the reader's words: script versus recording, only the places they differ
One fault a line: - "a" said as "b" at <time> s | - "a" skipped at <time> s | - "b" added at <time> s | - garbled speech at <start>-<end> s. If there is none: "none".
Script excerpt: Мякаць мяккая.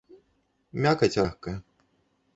none